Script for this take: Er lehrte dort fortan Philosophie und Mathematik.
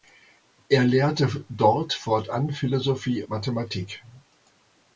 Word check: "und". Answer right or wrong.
wrong